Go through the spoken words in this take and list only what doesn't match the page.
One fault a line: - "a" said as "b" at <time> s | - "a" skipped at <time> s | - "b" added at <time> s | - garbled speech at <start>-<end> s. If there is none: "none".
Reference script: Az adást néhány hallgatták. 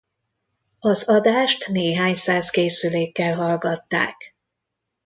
- "száz készülékkel" added at 2.1 s